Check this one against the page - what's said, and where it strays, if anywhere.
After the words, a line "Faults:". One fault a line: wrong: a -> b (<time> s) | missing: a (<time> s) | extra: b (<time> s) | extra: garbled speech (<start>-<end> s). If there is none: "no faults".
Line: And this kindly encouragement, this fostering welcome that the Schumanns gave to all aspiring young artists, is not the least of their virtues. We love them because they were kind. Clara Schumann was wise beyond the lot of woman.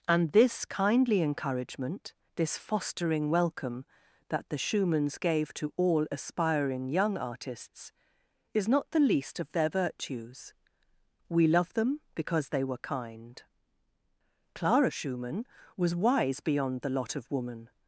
And this kindly encouragement, this fostering welcome that the Schumanns gave to all aspiring young artists, is not the least of their virtues. We love them because they were kind. Clara Schumann was wise beyond the lot of woman.
Faults:
no faults